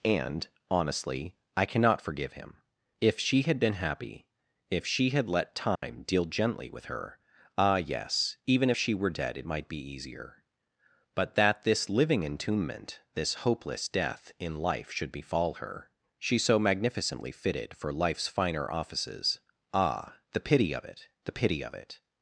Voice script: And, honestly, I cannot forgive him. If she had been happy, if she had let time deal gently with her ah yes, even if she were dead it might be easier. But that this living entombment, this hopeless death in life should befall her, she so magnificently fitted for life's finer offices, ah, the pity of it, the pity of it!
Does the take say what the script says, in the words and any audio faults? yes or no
no